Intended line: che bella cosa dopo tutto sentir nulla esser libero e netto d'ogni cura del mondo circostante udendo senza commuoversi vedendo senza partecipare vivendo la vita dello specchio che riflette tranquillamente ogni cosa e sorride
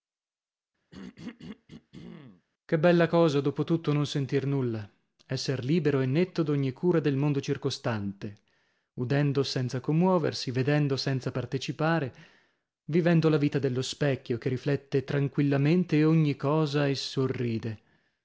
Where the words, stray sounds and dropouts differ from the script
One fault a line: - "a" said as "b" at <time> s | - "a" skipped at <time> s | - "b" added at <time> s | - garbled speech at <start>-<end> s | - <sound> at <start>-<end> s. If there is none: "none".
- throat clearing at 0.9-2.5 s
- "non" added at 3.9 s